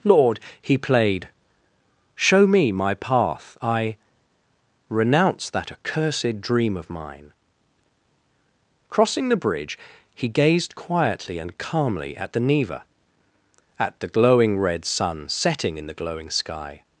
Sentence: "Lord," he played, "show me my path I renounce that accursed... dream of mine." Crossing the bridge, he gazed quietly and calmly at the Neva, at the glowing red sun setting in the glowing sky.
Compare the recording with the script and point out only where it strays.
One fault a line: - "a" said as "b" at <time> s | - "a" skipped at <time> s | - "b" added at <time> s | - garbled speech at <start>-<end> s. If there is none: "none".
none